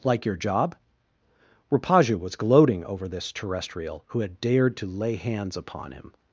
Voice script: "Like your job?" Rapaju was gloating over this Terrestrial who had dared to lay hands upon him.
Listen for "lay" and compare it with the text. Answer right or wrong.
right